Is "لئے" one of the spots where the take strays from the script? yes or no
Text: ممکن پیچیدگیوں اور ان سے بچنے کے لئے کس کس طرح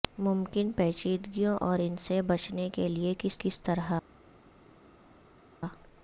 no